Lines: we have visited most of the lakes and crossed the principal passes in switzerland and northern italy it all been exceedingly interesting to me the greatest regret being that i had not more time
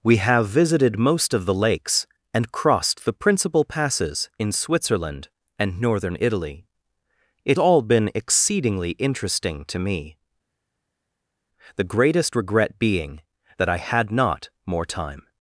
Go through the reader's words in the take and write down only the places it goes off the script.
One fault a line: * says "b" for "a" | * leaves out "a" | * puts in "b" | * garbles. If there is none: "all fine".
all fine